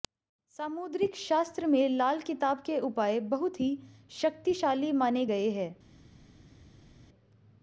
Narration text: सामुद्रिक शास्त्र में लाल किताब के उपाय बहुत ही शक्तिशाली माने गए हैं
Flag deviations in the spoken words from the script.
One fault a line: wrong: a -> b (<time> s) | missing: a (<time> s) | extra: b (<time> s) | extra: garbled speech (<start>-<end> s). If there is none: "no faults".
no faults